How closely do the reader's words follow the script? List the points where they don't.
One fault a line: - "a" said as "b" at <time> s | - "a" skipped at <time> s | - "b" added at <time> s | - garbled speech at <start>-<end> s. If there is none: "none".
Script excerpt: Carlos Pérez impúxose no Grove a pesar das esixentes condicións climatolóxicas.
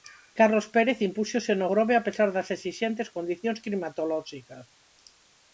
none